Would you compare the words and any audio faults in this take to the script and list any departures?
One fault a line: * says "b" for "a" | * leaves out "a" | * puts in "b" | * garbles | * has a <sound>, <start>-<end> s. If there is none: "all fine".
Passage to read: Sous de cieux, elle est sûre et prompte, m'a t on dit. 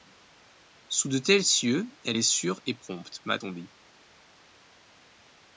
* puts in "tels"